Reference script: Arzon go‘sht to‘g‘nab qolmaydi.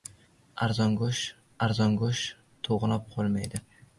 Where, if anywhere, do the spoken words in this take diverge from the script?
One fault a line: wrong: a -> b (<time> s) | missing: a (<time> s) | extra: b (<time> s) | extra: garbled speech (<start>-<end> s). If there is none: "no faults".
extra: arzon go‘sht (1.7 s)